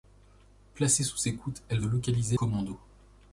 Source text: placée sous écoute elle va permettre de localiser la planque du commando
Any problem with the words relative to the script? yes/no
yes